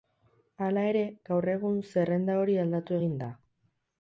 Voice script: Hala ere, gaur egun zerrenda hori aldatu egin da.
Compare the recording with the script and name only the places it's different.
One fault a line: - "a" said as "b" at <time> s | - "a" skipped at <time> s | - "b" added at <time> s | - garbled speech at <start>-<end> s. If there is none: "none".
none